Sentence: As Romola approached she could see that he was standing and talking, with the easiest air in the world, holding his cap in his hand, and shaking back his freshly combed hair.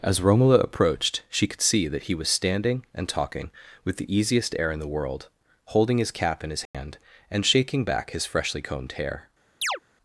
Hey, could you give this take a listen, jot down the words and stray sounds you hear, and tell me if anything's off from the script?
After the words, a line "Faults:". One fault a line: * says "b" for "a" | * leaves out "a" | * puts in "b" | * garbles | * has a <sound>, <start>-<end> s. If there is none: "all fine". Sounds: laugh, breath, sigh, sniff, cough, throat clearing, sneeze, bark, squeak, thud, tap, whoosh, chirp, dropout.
As Romola approached she could see that he was standing and talking, with the easiest air in the world, holding his cap in his hand, and shaking back his freshly combed hair.
Faults:
* has a dropout, 6.7-6.7 s
* has a chirp, 9.6-9.8 s